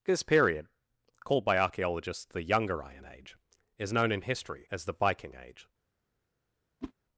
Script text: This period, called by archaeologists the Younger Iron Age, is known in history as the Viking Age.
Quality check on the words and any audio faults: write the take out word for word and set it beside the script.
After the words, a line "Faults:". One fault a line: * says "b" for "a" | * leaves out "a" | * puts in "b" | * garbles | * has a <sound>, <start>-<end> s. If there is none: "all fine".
This period, called by archaeologists the Younger Iron Age, is known in history as the Viking Age.
Faults:
* has a whoosh, 6.8-6.9 s